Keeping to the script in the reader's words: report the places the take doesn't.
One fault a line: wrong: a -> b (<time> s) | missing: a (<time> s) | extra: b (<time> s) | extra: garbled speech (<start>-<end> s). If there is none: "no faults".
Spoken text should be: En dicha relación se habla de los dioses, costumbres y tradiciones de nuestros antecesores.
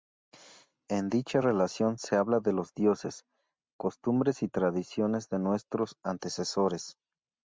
no faults